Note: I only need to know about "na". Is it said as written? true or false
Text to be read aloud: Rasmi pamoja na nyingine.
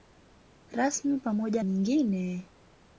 false